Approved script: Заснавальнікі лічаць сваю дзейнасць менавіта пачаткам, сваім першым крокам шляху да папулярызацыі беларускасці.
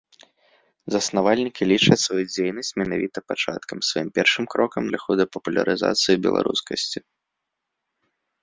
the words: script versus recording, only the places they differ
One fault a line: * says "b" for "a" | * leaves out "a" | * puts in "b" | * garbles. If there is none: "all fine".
all fine